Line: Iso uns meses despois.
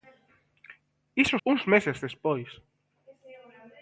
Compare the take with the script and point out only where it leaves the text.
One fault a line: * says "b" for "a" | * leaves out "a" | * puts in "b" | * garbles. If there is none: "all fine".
all fine